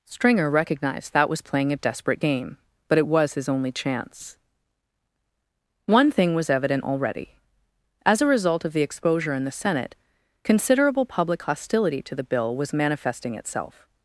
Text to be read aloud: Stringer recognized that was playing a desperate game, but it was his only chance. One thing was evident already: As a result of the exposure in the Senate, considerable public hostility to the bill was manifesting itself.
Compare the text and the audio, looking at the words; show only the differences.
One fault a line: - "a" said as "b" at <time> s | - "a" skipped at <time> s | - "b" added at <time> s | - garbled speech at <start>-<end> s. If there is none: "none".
none